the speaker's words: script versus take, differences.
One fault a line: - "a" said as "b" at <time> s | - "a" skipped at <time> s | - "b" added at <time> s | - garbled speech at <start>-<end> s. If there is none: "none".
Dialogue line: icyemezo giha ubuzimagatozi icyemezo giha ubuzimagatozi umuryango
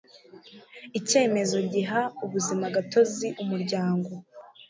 - "icyemezo giha ubuzimagatozi" skipped at 3.3 s